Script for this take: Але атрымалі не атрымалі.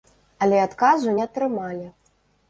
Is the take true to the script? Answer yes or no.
no